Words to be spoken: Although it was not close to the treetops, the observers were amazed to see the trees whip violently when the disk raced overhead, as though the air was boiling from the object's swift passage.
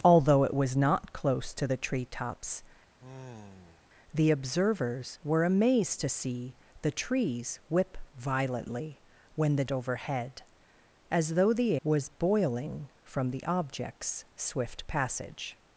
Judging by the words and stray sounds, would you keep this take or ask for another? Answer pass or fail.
fail